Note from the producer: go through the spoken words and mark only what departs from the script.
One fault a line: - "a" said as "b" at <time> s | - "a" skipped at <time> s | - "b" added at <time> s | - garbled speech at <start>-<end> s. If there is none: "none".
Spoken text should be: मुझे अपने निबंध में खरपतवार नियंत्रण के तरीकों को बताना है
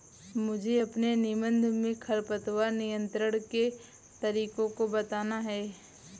none